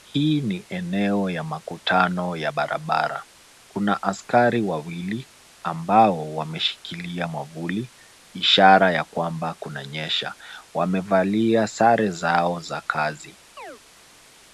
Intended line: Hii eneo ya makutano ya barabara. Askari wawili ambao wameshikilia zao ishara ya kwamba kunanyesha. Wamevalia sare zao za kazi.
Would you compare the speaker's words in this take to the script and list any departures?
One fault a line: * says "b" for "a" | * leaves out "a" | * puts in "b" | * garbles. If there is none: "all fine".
* puts in "ni"
* puts in "Kuna"
* says "mwavuli" for "zao"